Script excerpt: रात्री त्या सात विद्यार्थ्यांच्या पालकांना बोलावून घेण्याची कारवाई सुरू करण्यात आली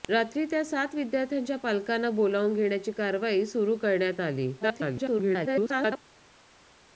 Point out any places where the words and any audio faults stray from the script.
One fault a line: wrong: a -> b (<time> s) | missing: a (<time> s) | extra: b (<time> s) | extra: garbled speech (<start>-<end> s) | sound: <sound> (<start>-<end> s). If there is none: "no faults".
extra: garbled speech (4.6-6.0 s)